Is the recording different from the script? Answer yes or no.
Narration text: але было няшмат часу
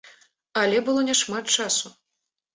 no